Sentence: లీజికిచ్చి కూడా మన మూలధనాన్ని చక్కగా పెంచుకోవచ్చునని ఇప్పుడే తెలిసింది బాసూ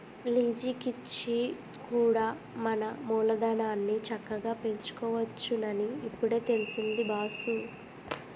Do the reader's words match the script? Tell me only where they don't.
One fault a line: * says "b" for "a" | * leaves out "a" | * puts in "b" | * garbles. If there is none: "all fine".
all fine